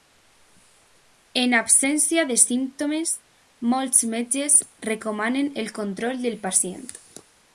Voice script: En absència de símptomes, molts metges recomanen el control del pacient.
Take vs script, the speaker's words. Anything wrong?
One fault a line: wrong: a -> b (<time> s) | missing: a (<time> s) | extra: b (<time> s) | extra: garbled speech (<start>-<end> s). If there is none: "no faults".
no faults